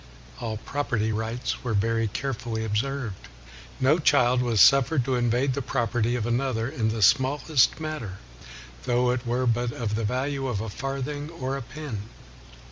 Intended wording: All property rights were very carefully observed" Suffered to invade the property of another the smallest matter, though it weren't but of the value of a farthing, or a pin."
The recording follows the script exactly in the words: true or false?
false